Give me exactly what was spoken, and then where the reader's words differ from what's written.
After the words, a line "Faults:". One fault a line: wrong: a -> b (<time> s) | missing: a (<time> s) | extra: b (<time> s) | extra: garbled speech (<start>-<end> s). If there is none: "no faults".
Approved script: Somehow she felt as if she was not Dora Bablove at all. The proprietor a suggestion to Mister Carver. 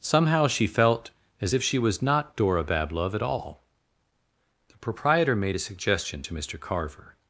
Somehow she felt as if she was not Dora Bablove at all. The proprietor made a suggestion to Mister Carver.
Faults:
extra: made (5.3 s)